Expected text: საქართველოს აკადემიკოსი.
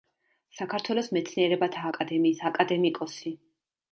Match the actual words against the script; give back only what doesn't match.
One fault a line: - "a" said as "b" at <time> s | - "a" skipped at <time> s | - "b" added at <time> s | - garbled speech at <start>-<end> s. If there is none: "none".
- "მეცნიერებათა აკადემიის" added at 1.2 s